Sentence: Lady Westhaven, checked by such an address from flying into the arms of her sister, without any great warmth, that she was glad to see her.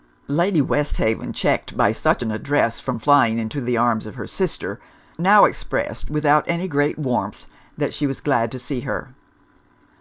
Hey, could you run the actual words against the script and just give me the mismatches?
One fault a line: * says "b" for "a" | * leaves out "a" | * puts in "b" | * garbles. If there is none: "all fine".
* puts in "now expressed"